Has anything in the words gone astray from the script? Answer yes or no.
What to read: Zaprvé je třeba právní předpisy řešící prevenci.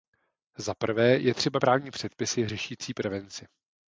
no